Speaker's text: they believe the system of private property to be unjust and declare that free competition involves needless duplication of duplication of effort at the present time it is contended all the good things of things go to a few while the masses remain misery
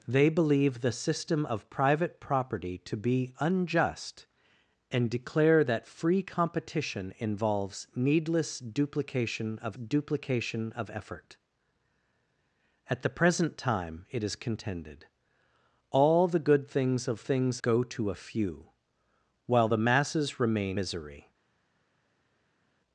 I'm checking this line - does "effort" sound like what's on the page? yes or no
yes